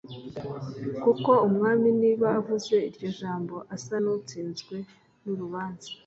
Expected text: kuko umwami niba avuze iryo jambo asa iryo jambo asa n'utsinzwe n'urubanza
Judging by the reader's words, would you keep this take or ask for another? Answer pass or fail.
fail